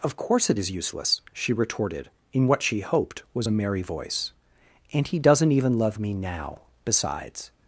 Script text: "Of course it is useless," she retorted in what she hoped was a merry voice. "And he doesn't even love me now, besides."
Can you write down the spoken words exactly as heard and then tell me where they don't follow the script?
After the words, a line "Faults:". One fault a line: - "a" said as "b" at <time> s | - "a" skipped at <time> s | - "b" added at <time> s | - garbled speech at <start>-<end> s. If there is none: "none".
"Of course it is useless," she retorted in what she hoped was a merry voice. "And he doesn't even love me now, besides."
Faults:
none